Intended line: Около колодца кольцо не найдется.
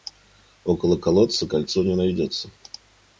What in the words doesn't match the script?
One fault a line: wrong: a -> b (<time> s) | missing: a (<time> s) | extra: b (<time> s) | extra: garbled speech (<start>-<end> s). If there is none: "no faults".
no faults